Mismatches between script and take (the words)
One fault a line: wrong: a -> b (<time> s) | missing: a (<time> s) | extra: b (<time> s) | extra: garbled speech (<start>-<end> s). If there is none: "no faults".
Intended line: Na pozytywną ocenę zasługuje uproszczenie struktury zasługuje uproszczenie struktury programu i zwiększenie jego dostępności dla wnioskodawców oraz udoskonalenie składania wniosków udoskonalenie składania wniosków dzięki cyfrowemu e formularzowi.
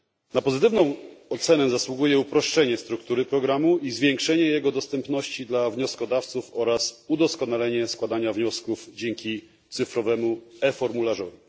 missing: zasługuje uproszczenie struktury (3.2 s)
missing: udoskonalenie składania wniosków (8.9 s)